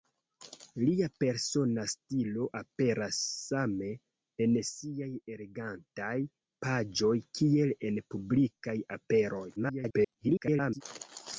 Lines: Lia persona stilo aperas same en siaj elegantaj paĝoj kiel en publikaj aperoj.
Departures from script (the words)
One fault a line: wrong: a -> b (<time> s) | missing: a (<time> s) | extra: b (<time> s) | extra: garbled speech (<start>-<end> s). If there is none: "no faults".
extra: garbled speech (9.6-10.8 s)